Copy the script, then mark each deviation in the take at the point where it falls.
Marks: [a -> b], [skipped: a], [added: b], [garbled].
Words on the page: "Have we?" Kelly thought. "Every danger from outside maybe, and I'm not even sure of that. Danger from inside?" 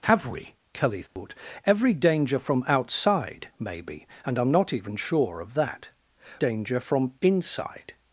"Have we?" Kelly thought. "Every danger from outside maybe, and I'm not even sure of that. Danger from inside?"